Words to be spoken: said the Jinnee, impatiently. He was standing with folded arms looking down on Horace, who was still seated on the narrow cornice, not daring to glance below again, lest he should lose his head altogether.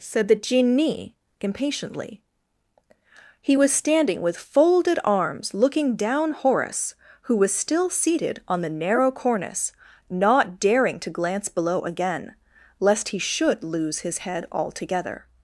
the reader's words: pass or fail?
fail